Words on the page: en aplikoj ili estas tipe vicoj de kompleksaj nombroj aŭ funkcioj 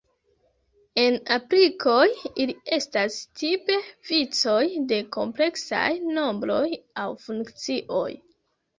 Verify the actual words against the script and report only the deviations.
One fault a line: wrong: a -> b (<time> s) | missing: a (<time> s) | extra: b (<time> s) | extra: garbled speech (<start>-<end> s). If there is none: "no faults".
no faults